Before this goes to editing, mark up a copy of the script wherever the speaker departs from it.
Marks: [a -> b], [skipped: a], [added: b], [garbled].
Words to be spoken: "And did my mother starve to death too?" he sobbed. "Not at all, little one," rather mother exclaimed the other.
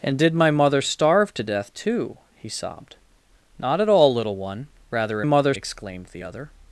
"And did my mother starve to death too?" he sobbed. "Not at all, little one," rather mother exclaimed the other.